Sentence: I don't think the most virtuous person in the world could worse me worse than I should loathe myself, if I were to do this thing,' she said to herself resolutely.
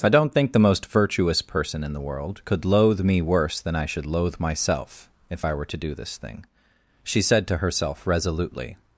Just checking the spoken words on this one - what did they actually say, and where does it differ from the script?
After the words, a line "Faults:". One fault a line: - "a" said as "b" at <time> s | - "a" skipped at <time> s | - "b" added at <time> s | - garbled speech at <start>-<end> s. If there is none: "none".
I don't think the most virtuous person in the world could loathe me worse than I should loathe myself, if I were to do this thing,' she said to herself resolutely.
Faults:
- "worse" said as "loathe" at 2.6 s